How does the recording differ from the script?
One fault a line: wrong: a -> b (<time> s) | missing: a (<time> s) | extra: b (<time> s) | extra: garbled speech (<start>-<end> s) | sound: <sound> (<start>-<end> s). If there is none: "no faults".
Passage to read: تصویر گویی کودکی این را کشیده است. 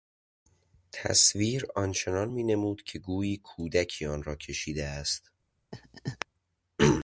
extra: آنچنان مینمود که (1.8 s)
wrong: این -> آن (4.0 s)
sound: laugh (5.7-6.3 s)